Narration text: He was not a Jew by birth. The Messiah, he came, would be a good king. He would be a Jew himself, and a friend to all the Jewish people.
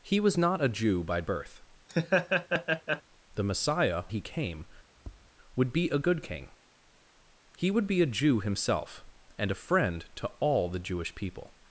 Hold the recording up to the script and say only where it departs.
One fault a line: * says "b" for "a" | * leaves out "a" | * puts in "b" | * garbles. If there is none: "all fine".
all fine